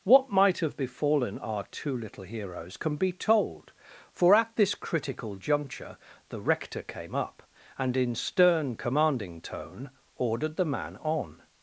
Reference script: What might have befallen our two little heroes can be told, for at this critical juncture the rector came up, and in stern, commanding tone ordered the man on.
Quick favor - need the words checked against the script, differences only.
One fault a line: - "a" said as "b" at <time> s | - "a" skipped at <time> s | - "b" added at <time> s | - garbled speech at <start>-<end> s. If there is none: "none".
none